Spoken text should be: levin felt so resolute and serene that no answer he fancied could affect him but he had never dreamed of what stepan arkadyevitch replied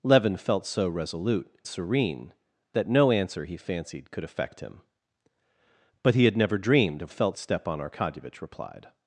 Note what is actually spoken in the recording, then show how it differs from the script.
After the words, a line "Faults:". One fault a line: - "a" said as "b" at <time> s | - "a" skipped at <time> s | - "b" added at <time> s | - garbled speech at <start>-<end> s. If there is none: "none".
levin felt so resolute serene that no answer he fancied could affect him but he had never dreamed of felt stepan arkadyevitch replied
Faults:
- "and" skipped at 1.5 s
- "what" said as "felt" at 7.1 s